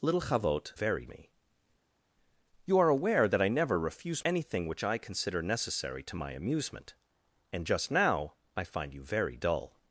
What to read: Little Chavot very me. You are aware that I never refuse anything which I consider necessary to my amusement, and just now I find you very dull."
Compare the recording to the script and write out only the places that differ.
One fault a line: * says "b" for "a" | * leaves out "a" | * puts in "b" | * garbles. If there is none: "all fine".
all fine